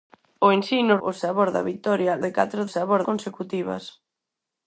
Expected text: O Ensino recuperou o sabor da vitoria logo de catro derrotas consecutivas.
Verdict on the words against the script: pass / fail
fail